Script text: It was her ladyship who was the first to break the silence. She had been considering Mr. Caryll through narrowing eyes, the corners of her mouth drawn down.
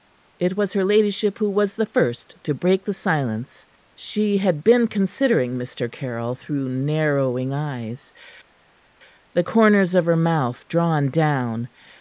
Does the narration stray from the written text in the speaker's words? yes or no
no